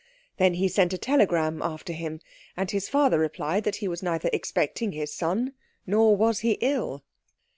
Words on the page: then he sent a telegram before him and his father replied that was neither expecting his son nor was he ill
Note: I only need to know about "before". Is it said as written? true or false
false